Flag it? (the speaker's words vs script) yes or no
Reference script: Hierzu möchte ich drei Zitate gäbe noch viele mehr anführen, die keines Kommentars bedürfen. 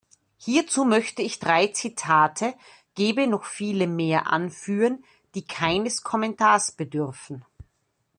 no